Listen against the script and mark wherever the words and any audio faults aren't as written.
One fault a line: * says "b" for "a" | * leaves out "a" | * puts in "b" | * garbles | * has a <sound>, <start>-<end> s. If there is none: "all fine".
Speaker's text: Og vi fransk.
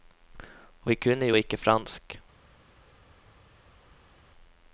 * puts in "kunne jo ikke"